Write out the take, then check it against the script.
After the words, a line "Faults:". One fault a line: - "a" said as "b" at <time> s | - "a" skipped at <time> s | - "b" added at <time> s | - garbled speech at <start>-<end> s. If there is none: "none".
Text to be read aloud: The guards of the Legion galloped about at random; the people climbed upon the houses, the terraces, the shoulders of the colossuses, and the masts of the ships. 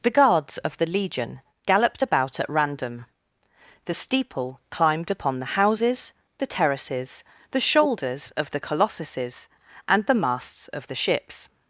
The guards of the Legion galloped about at random; the steeple climbed upon the houses, the terraces, the shoulders of the colossuses, and the masts of the ships.
Faults:
- "people" said as "steeple" at 3.9 s